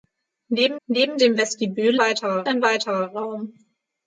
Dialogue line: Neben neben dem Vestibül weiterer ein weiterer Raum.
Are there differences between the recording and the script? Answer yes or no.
no